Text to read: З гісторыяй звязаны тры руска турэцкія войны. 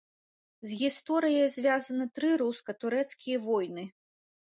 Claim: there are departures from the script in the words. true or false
false